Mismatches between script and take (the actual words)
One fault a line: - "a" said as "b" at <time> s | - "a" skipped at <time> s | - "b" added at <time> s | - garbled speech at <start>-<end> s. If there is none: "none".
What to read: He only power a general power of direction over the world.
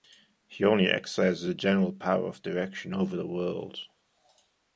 - "power" said as "exercises" at 0.9 s